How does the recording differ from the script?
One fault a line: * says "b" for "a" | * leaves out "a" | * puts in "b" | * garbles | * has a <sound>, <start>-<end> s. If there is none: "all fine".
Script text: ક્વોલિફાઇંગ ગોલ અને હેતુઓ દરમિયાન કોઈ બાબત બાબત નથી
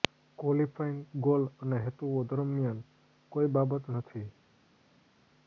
* leaves out "બાબત"